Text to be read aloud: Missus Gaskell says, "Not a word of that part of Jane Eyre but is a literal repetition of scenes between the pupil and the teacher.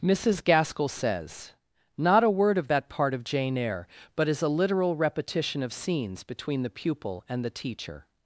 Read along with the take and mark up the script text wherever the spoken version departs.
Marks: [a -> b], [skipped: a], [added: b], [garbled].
Missus Gaskell says, "Not a word of that part of Jane Eyre but is a literal repetition of scenes between the pupil and the teacher.